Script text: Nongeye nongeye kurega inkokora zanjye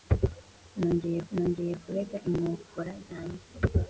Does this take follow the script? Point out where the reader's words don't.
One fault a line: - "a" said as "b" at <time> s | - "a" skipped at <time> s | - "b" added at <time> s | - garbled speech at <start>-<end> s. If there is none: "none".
none